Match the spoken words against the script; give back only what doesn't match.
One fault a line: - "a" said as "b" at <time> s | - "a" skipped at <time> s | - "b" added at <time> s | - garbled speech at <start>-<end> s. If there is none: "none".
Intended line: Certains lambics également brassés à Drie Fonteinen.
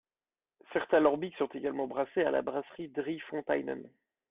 - "sont" added at 1.4 s
- "la brasserie" added at 2.3 s